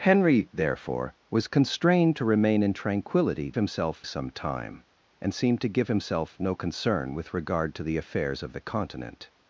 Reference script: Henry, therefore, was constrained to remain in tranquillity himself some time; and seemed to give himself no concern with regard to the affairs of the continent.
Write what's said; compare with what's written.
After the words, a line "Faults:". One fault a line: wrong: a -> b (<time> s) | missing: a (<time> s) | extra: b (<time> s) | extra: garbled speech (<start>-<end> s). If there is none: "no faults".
Henry, therefore, was constrained to remain in tranquillity himself some time; and seemed to give himself no concern with regard to the affairs of the continent.
Faults:
no faults